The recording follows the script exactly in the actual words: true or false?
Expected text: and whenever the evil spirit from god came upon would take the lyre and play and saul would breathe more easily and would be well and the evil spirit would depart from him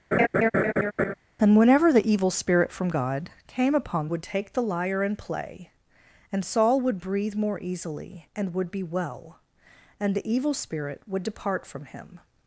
true